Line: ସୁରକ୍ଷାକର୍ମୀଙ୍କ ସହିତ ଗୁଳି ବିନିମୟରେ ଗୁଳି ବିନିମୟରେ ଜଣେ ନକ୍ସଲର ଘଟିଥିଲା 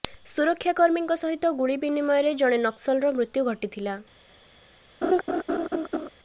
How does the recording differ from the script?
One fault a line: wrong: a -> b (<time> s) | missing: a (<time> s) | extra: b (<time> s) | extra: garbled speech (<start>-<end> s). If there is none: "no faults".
missing: ଗୁଳି ବିନିମୟରେ (2.4 s)
extra: ମୃତ୍ୟୁ (3.2 s)